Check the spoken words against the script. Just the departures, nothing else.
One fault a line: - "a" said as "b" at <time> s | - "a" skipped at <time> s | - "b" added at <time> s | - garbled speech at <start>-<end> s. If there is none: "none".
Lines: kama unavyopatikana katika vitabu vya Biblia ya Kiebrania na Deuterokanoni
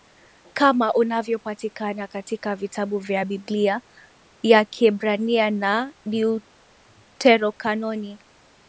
none